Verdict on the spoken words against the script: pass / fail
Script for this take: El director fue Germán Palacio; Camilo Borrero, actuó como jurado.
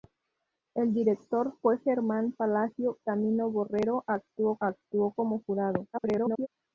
fail